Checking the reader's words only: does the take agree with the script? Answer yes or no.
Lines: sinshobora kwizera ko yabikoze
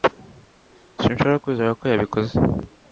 yes